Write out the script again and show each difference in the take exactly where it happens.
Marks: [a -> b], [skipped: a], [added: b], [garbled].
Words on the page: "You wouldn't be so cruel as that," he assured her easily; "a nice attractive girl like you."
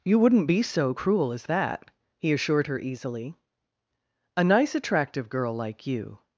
"You wouldn't be so cruel as that," he assured her easily; "a nice attractive girl like you."